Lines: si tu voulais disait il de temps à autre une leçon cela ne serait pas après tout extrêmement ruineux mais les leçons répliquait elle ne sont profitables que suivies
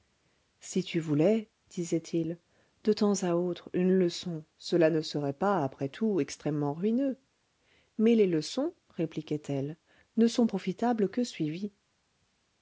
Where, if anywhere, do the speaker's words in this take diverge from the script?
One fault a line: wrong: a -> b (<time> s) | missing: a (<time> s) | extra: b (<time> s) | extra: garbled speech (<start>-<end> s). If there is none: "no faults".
no faults